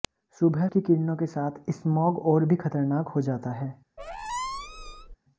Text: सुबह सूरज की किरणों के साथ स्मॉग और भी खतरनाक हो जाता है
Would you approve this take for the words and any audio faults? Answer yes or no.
no